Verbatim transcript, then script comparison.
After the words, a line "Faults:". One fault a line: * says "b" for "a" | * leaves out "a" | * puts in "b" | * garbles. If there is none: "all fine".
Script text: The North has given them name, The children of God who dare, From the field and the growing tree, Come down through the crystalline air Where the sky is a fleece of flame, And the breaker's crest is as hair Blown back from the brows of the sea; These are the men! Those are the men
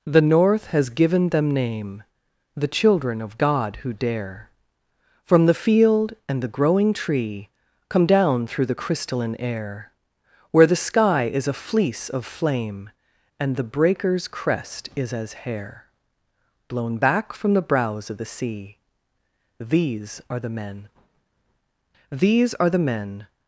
The North has given them name, The children of God who dare, From the field and the growing tree, Come down through the crystalline air Where the sky is a fleece of flame, And the breaker's crest is as hair Blown back from the brows of the sea; These are the men! These are the men
Faults:
* says "These" for "Those"